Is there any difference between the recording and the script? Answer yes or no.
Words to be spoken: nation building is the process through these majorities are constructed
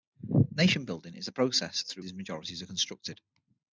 no